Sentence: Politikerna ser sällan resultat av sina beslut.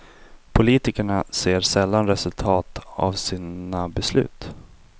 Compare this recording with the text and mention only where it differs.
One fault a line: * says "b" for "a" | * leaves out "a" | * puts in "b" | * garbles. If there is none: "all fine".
all fine